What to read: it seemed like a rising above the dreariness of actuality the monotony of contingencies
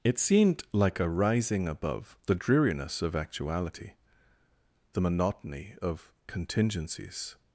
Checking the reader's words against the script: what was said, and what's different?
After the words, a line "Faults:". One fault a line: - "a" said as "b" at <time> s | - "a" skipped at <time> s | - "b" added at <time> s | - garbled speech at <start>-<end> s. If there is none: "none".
it seemed like a rising above the dreariness of actuality the monotony of contingencies
Faults:
none